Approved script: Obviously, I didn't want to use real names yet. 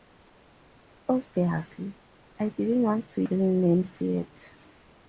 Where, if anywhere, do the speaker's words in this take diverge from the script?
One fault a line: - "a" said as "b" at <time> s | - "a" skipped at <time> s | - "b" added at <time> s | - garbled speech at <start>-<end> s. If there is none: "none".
- "use" skipped at 3.2 s